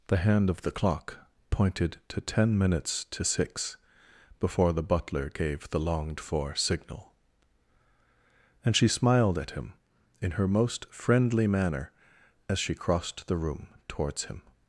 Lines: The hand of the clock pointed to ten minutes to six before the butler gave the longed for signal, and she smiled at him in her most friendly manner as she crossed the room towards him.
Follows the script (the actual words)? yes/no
yes